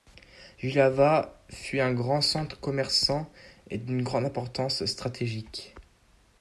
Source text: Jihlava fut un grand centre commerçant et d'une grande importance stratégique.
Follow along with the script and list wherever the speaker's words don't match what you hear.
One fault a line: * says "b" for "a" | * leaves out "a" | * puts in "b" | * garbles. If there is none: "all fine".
all fine